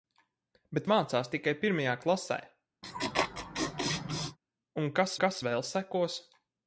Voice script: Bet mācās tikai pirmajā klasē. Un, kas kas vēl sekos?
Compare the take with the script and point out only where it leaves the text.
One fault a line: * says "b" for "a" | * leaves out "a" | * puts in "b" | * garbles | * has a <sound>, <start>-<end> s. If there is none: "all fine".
* has a laugh, 2.8-4.4 s